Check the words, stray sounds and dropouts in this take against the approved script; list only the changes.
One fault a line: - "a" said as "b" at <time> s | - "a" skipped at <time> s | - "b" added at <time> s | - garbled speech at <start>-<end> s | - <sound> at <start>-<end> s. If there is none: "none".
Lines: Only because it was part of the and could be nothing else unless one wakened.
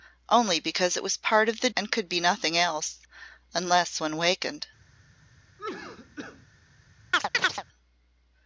- cough at 5.6-6.5 s
- chirp at 7.1-7.6 s